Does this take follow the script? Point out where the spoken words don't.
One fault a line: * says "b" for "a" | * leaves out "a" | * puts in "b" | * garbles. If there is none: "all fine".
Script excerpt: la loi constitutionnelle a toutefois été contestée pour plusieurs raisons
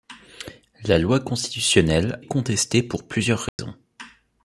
* leaves out "a toutefois été"